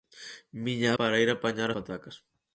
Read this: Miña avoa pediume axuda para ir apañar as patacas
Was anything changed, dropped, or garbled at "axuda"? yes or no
yes